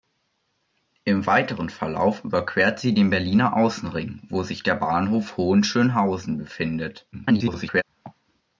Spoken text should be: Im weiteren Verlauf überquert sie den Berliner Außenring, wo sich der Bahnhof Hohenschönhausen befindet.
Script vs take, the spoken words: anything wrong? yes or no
yes